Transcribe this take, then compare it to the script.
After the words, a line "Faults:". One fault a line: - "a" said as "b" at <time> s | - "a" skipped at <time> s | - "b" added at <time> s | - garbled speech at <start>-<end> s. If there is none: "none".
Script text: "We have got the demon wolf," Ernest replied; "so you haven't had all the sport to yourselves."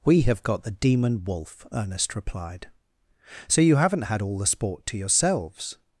"We have got the demon wolf," Ernest replied; "so you haven't had all the sport to yourselves."
Faults:
none